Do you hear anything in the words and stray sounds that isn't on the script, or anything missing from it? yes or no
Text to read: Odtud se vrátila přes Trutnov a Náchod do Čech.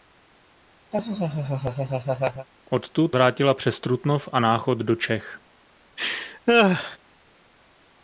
yes